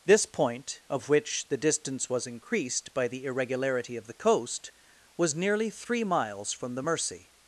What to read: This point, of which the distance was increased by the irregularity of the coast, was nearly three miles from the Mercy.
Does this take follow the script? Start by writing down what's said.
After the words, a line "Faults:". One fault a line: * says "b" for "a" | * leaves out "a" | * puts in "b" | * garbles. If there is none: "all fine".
This point, of which the distance was increased by the irregularity of the coast, was nearly three miles from the Mercy.
Faults:
all fine